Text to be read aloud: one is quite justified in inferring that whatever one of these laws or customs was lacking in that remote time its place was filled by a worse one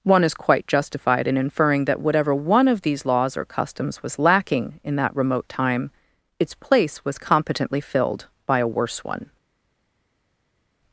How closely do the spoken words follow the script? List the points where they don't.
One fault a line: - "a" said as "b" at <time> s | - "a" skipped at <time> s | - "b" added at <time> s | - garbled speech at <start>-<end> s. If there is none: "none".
- "competently" added at 7.2 s